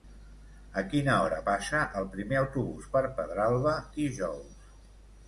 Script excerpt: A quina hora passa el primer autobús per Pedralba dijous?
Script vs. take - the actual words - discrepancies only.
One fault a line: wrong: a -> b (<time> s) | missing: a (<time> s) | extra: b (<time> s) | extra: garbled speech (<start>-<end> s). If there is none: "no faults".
no faults